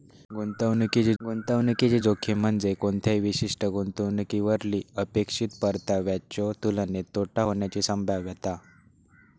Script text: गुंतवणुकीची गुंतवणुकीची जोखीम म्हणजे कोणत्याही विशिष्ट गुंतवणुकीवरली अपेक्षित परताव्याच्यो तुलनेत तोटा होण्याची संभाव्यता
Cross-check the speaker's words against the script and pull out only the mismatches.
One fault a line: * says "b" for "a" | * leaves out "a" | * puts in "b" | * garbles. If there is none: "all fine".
all fine